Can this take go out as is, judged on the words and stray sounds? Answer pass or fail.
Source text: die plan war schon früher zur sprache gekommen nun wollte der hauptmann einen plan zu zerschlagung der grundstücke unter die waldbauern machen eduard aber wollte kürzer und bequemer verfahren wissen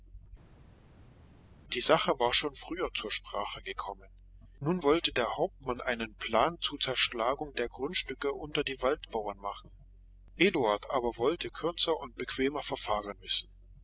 fail